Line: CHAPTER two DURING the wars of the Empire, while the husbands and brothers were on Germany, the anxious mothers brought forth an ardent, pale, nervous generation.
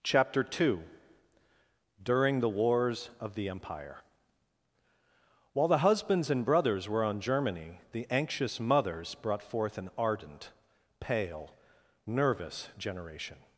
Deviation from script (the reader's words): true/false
false